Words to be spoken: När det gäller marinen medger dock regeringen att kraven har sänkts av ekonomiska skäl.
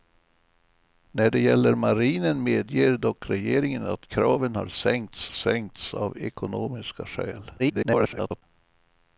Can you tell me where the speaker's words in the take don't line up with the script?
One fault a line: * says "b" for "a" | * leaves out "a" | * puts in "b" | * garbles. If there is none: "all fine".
* puts in "sänkts"
* garbles